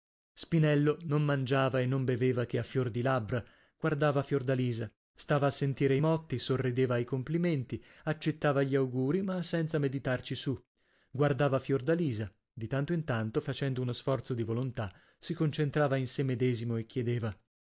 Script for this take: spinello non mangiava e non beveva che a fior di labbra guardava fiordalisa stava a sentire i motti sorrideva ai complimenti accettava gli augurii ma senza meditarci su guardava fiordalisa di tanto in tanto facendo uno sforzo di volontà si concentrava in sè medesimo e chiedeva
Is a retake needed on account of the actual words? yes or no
no